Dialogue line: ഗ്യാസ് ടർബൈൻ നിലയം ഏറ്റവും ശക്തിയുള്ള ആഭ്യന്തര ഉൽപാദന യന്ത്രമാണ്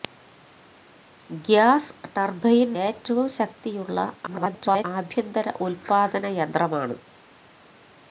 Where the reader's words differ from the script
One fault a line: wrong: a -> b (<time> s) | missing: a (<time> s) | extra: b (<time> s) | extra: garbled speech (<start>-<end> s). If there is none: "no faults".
missing: നിലയം (2.7 s)
extra: garbled speech (4.3-4.9 s)